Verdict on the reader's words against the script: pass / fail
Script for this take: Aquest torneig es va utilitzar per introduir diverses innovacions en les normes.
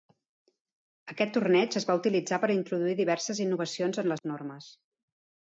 pass